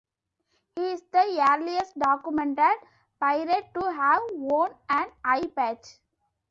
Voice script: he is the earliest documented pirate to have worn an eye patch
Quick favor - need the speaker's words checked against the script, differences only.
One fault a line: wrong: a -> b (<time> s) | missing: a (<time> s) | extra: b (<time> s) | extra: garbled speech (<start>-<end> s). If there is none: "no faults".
no faults